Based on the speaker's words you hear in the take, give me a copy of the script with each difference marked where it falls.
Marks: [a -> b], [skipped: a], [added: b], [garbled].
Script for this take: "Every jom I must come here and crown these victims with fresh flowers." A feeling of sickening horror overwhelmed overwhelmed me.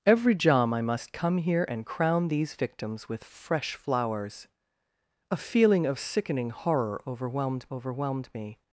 "Every jom I must come here and crown these victims with fresh flowers." A feeling of sickening horror overwhelmed overwhelmed me.